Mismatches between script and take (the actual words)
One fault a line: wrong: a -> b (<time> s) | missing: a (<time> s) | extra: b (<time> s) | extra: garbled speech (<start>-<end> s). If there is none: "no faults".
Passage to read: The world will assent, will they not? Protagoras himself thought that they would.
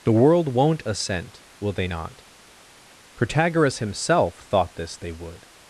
wrong: will -> won't (0.5 s)
wrong: that -> this (4.8 s)